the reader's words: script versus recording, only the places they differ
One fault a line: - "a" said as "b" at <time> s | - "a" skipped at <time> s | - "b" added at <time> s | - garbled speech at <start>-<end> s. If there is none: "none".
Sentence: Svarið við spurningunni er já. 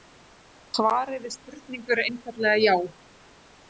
- "einfaldlega" added at 2.1 s